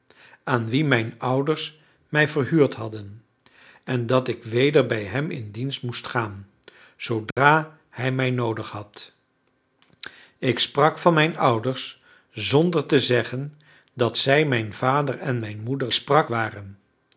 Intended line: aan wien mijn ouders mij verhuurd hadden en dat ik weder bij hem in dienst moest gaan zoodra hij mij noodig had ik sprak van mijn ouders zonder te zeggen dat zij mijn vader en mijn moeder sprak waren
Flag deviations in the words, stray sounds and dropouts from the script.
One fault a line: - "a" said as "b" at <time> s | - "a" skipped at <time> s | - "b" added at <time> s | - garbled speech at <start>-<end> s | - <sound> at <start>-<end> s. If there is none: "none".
- dropout at 7.3-7.4 s